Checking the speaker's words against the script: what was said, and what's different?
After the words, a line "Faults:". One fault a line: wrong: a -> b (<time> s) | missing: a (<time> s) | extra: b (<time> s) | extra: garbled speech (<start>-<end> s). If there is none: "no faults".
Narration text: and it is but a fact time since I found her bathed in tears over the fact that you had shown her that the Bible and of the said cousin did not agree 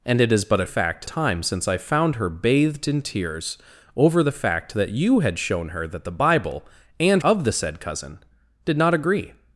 and it is but a fact time since I found her bathed in tears over the fact that you had shown her that the Bible and of the said cousin did not agree
Faults:
no faults